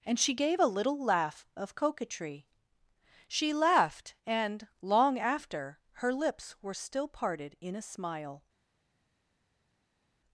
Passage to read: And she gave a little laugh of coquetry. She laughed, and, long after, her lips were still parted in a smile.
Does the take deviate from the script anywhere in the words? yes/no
no